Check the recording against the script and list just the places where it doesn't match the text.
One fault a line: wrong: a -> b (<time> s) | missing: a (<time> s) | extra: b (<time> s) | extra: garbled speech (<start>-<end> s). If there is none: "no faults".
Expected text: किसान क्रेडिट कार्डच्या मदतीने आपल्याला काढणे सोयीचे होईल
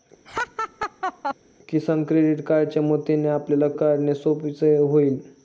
no faults